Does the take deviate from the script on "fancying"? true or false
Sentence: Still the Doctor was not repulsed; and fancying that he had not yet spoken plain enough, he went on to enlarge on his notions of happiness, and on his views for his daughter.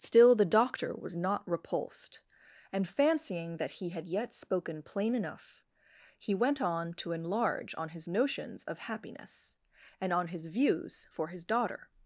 false